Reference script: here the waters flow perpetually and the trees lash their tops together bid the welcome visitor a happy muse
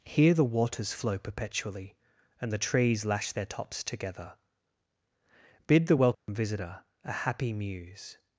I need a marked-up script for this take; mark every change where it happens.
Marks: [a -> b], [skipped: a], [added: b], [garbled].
here the waters flow perpetually and the trees lash their tops together bid the welcome visitor a happy muse